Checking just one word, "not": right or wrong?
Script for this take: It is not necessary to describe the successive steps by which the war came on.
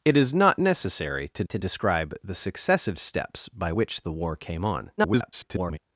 right